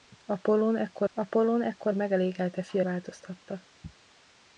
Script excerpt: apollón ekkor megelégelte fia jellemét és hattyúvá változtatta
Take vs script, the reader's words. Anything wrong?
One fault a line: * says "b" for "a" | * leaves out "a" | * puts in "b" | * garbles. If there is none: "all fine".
* puts in "apollón ekkor"
* leaves out "jellemét és hattyúvá"